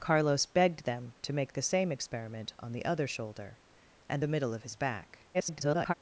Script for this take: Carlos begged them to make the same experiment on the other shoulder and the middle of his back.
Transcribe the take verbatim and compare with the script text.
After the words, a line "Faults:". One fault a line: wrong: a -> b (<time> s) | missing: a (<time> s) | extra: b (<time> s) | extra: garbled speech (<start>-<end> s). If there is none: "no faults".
Carlos begged them to make the same experiment on the other shoulder and the middle of his back. [garbled]
Faults:
extra: garbled speech (5.3-5.9 s)